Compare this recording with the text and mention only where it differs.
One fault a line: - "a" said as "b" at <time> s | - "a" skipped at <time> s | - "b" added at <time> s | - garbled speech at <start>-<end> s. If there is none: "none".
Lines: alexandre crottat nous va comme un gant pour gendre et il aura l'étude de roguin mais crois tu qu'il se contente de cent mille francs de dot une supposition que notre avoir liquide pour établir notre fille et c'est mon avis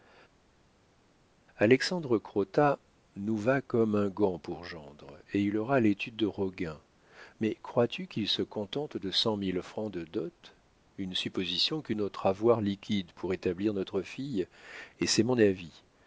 none